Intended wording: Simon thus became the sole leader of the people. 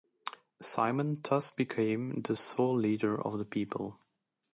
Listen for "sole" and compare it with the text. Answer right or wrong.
right